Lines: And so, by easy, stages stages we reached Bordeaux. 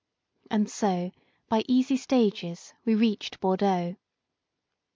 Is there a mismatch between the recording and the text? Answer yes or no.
yes